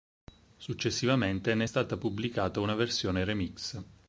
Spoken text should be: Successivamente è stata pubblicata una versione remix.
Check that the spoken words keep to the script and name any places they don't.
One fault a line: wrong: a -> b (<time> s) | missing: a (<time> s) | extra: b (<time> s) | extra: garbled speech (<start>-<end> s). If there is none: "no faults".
extra: ne (1.5 s)